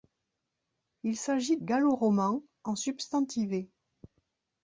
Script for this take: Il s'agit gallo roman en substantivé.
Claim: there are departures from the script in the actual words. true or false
false